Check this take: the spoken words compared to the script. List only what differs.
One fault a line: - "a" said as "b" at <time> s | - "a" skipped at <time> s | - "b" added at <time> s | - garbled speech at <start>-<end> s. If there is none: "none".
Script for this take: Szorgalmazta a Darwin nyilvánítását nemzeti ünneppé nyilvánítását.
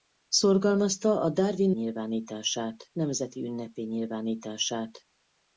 none